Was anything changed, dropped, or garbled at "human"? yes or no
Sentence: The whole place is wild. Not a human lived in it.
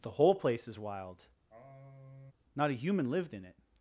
no